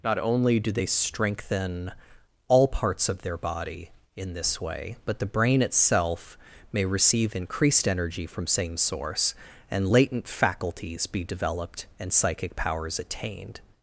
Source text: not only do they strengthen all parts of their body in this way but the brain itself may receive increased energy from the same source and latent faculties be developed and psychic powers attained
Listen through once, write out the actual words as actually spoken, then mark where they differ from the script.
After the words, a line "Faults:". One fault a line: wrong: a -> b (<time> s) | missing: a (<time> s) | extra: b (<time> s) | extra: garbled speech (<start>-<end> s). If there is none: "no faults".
not only do they strengthen all parts of their body in this way but the brain itself may receive increased energy from same source and latent faculties be developed and psychic powers attained
Faults:
missing: the (8.5 s)